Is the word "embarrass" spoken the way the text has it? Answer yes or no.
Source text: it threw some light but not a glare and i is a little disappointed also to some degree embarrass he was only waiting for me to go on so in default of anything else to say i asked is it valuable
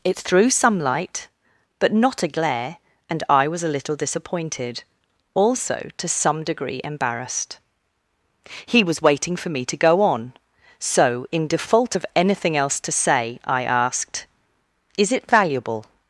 no